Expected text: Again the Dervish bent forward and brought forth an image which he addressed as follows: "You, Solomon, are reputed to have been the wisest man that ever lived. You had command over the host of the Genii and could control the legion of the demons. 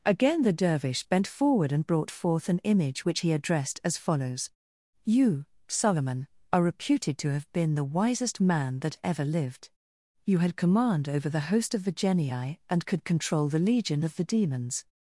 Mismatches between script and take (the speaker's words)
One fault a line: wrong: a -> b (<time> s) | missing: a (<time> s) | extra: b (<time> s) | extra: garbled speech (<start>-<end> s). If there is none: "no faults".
no faults